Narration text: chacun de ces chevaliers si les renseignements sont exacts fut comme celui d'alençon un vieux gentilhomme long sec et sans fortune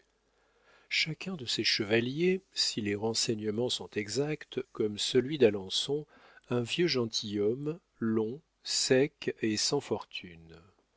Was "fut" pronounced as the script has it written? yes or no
no